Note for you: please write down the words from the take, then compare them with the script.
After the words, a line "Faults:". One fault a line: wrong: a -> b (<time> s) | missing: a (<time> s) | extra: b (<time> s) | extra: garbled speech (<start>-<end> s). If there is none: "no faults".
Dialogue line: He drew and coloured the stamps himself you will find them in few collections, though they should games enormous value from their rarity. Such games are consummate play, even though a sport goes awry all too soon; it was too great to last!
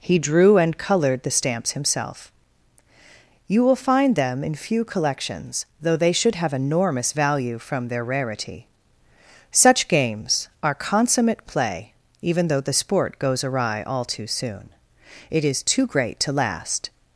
He drew and coloured the stamps himself you will find them in few collections, though they should have enormous value from their rarity. Such games are consummate play, even though the sport goes awry all too soon; it is too great to last!
Faults:
wrong: games -> have (6.3 s)
wrong: a -> the (12.6 s)
wrong: was -> is (15.4 s)